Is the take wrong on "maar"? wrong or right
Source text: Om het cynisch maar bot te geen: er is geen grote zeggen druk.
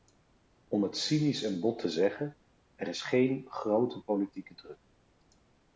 wrong